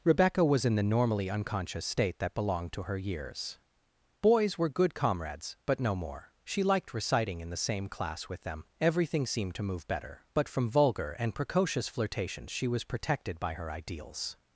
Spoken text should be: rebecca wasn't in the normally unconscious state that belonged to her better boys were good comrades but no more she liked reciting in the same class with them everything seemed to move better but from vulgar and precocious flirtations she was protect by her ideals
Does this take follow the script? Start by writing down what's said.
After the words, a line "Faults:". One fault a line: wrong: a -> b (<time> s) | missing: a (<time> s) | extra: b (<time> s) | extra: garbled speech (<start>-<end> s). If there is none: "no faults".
rebecca was in the normally unconscious state that belonged to her years boys were good comrades but no more she liked reciting in the same class with them everything seemed to move better but from vulgar and precocious flirtations she was protected by her ideals
Faults:
wrong: wasn't -> was (0.4 s)
wrong: better -> years (3.0 s)
wrong: protect -> protected (12.8 s)